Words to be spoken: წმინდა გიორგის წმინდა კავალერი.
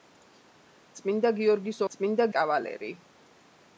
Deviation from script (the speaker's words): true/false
false